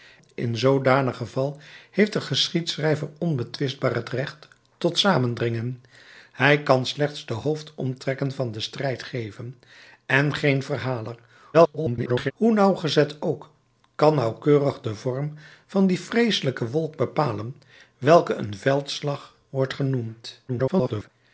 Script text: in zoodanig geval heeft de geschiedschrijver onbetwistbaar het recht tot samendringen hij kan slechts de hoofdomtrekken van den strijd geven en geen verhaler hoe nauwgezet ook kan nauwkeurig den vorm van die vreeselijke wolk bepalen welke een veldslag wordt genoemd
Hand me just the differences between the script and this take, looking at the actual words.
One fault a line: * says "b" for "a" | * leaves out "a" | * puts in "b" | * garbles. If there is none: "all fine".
* garbles
* garbles